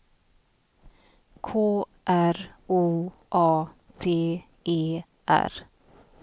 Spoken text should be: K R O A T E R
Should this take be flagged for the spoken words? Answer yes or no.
no